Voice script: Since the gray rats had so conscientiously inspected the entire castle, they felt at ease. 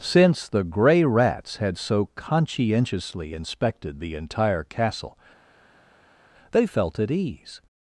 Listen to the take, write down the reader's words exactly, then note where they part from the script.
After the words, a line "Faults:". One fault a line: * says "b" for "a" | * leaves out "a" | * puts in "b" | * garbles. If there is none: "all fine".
Since the gray rats had so conscientiously inspected the entire castle, they felt at ease.
Faults:
all fine